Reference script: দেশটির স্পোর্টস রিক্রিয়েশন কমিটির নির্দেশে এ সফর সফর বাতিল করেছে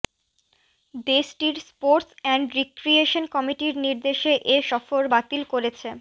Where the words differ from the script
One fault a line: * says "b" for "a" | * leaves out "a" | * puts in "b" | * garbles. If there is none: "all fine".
* puts in "অ্যান্ড"
* leaves out "সফর"